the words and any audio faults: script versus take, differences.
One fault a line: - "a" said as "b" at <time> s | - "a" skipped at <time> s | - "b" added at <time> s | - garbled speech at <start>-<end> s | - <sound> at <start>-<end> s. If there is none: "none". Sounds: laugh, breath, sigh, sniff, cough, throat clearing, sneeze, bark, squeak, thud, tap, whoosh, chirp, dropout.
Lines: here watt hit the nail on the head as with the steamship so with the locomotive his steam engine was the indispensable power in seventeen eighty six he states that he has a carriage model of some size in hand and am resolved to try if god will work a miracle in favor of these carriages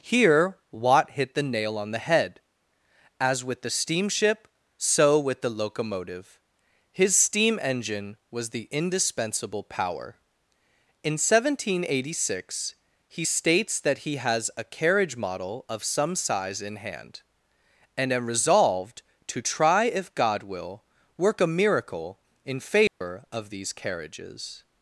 - dropout at 22.9-23.0 s